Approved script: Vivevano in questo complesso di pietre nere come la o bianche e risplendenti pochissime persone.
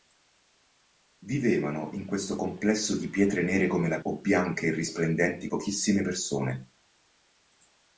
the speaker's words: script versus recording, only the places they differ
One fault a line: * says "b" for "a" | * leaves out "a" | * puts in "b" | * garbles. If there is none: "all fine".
all fine